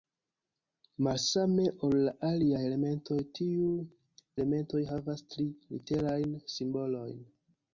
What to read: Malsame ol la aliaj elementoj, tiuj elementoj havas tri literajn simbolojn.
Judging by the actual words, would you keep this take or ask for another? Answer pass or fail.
pass